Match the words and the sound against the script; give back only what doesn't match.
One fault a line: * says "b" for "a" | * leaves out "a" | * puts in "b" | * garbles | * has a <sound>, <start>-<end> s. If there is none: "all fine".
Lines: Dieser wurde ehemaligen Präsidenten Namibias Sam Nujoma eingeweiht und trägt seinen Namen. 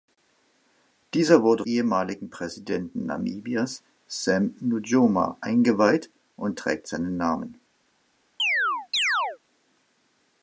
* has a chirp, 8.4-9.4 s